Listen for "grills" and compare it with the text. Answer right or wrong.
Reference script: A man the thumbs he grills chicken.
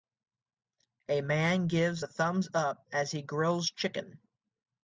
right